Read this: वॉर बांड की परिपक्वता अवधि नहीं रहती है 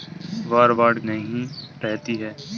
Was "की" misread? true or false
true